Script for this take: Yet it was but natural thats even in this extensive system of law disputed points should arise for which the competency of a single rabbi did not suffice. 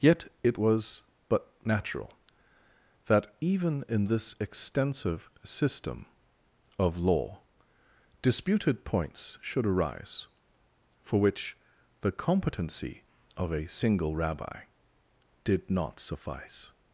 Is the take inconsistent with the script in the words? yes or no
yes